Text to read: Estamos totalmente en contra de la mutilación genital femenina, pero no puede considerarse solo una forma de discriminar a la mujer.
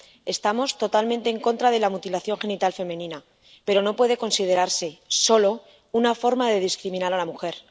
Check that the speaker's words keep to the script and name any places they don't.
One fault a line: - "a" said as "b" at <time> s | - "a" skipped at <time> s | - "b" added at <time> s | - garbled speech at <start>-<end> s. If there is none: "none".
none